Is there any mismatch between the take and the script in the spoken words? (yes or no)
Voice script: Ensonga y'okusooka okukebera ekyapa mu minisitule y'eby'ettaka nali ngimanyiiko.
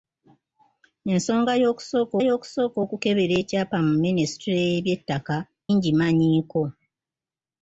yes